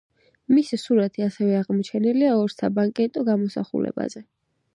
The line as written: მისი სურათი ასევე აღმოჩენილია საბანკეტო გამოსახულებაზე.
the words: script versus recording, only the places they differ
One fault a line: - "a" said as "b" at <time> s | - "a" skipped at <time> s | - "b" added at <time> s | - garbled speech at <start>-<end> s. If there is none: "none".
- "ორ" added at 2.4 s